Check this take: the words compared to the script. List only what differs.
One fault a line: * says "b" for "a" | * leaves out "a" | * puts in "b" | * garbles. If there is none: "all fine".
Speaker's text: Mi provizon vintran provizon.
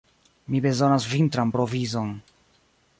* says "bezonas" for "provizon"